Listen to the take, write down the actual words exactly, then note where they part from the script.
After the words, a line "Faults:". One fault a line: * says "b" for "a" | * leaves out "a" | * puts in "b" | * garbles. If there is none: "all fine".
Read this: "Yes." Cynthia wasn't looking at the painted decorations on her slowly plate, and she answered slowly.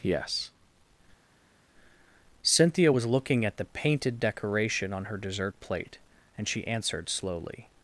"Yes." Cynthia was looking at the painted decoration on her dessert plate, and she answered slowly.
Faults:
* says "was" for "wasn't"
* says "decoration" for "decorations"
* says "dessert" for "slowly"